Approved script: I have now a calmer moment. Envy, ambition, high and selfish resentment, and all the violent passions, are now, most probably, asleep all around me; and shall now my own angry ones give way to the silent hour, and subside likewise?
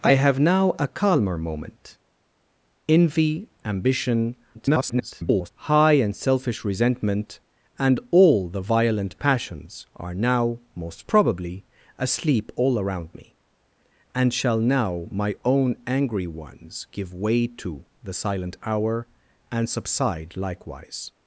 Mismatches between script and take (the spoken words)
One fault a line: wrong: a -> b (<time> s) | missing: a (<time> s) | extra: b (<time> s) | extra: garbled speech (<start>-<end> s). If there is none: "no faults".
extra: garbled speech (4.5-5.5 s)